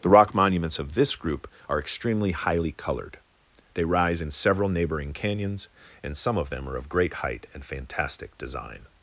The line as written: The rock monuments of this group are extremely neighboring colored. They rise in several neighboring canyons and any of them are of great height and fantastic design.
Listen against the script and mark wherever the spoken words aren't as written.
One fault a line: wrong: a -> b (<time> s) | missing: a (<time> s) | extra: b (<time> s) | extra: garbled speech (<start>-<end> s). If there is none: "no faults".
wrong: neighboring -> highly (2.3 s)
wrong: any -> some (6.1 s)